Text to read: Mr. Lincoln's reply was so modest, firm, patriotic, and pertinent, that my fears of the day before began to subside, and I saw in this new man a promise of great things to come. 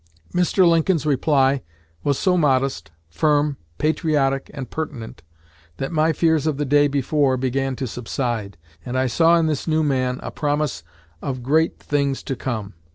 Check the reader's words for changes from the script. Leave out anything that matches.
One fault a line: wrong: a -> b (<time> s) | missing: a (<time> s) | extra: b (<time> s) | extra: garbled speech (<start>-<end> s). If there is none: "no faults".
no faults